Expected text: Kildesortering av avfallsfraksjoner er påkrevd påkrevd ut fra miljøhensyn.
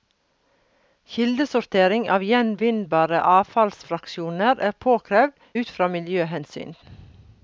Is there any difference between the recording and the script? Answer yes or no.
yes